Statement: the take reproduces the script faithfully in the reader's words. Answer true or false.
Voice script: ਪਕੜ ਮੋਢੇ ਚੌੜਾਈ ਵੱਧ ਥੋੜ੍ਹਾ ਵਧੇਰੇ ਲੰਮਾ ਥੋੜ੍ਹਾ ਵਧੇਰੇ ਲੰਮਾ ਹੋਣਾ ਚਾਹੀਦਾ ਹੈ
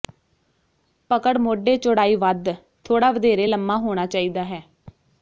false